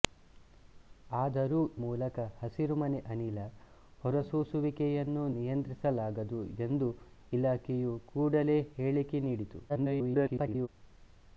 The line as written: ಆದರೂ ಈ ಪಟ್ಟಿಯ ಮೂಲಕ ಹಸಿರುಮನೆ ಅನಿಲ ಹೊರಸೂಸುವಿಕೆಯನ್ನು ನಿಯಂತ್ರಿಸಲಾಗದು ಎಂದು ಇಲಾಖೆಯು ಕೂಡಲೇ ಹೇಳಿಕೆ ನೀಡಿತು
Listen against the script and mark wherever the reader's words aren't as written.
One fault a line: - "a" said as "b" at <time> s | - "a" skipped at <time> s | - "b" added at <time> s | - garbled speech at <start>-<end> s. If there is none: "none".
- "ಈ ಪಟ್ಟಿಯ" skipped at 1.6 s
- garbled speech at 9.7-10.7 s